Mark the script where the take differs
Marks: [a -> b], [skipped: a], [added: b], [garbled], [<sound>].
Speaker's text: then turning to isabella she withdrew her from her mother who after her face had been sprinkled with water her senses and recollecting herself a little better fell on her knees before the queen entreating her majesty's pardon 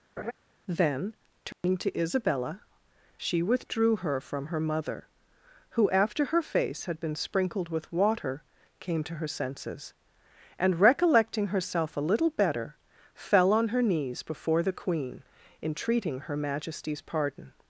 [laugh] then turning [dropout] to isabella she withdrew her from her mother who after her face had been sprinkled with water [added: came to] her senses and recollecting herself a little better fell on her knees before the queen entreating her majesty's pardon